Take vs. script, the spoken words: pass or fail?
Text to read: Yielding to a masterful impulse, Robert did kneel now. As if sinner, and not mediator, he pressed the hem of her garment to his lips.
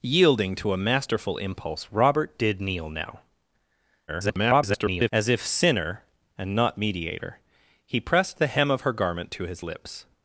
fail